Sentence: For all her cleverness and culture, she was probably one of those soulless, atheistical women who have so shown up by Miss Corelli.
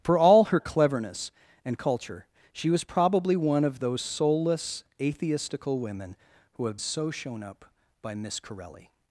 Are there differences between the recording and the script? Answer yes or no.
no